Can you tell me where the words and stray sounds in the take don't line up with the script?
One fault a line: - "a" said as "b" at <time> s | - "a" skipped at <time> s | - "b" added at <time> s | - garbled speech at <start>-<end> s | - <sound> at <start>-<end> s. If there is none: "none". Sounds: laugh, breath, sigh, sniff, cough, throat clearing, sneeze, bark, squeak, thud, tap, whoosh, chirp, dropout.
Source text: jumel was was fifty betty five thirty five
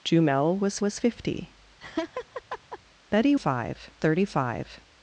- laugh at 1.8-2.8 s